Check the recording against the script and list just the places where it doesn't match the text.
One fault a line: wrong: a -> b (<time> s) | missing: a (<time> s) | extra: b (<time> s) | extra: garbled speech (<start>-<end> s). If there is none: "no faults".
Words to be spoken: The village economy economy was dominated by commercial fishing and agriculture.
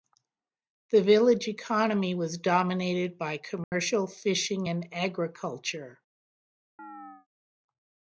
missing: economy (2.1 s)